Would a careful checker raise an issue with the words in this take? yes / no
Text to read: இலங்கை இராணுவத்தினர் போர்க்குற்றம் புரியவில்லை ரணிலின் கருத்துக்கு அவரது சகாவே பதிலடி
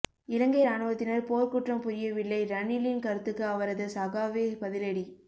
no